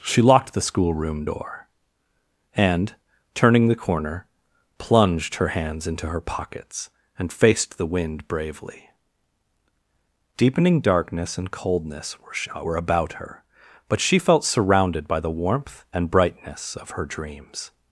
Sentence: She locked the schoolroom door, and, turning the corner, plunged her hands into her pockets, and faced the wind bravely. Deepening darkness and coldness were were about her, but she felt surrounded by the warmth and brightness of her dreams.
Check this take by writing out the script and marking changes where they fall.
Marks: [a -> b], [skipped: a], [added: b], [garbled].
She locked the schoolroom door, and, turning the corner, plunged her hands into her pockets, and faced the wind bravely. Deepening darkness and coldness were were about her, but she felt surrounded by the warmth and brightness of her dreams.